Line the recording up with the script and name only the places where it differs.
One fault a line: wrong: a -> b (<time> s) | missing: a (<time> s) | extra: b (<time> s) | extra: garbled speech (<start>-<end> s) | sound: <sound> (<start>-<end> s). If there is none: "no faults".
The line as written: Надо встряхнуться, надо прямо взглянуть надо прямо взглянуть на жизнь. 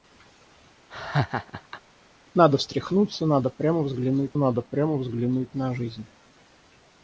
sound: laugh (0.9-1.8 s)